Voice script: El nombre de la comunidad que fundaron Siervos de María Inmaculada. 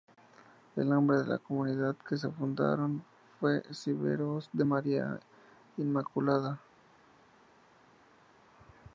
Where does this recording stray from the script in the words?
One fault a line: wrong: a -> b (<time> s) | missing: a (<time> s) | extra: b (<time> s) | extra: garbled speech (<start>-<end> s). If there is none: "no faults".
extra: fue (3.4 s)